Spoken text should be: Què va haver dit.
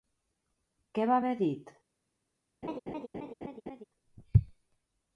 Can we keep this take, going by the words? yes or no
yes